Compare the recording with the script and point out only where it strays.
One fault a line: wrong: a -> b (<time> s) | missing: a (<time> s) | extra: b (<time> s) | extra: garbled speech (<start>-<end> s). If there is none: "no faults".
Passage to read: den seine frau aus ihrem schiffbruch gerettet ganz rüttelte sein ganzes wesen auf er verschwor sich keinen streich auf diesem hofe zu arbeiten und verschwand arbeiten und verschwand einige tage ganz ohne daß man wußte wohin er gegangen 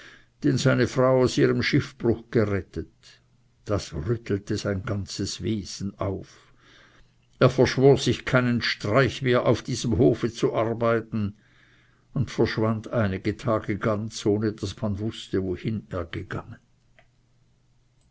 wrong: ganz -> das (3.6 s)
extra: mehr (9.2 s)
missing: arbeiten und verschwand (12.9 s)